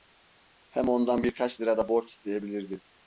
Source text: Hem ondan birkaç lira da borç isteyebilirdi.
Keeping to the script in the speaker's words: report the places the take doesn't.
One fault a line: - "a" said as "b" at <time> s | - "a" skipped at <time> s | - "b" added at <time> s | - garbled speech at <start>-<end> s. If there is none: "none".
none